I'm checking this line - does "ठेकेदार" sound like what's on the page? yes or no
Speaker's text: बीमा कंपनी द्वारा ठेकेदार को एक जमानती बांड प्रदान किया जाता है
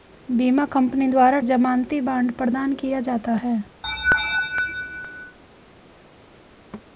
no